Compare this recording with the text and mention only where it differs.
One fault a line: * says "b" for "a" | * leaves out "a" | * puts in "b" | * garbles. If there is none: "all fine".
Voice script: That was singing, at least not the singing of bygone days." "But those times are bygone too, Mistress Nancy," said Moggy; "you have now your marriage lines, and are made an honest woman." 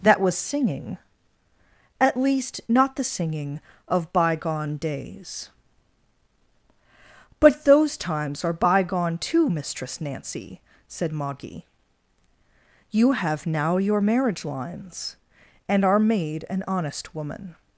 all fine